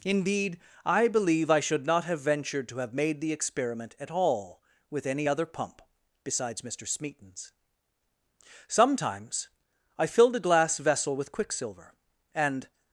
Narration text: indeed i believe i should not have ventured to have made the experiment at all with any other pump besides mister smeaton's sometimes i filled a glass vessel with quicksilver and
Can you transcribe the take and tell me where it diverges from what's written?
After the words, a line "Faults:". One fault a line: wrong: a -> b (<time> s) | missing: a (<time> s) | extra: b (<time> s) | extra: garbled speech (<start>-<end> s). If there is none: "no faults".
indeed i believe i should not have ventured to have made the experiment at all with any other pump besides mister smeaton's sometimes i filled a glass vessel with quicksilver and
Faults:
no faults